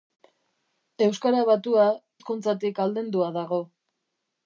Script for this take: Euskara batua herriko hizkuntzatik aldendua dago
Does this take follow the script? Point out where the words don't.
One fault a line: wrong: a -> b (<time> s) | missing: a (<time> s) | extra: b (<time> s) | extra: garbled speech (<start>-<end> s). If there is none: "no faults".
missing: herriko (1.9 s)